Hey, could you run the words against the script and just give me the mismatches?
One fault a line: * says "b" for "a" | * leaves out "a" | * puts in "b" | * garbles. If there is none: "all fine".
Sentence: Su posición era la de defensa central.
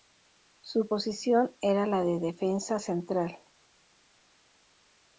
all fine